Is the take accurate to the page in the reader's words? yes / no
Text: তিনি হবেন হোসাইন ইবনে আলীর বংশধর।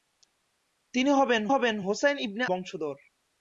no